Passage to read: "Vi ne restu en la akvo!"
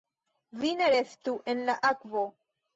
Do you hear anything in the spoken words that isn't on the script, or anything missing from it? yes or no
no